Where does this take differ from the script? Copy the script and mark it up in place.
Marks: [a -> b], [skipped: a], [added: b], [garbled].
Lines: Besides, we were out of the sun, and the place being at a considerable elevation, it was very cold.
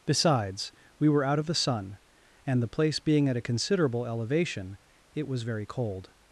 Besides, we were out of the sun, and the place being at a considerable elevation, it was very cold.